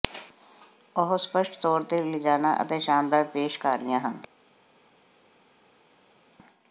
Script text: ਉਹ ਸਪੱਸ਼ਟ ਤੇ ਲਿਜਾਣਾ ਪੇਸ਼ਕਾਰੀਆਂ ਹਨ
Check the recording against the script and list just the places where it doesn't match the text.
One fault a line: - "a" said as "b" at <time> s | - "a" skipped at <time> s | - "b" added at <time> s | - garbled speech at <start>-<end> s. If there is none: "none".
- "ਤੌਰ" added at 1.6 s
- "ਅਤੇ ਸ਼ਾਨਦਾਰ" added at 2.6 s